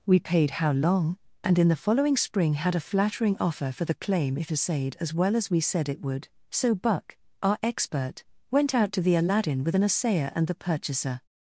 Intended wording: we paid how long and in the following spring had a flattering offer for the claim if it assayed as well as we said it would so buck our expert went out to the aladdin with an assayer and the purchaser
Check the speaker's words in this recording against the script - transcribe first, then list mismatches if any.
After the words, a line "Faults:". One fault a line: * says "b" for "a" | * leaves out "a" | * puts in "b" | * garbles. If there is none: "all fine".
we paid how long and in the following spring had a flattering offer for the claim if assayed as well as we said it would so buck our expert went out to the aladdin with an assayer and the purchaser
Faults:
* leaves out "it"